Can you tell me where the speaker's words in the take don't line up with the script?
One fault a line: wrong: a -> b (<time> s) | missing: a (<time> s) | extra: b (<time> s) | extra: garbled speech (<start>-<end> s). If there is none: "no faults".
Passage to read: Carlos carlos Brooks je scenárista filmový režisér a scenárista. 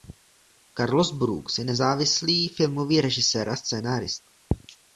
missing: carlos (1.1 s)
wrong: scenárista -> nezávislý (1.6 s)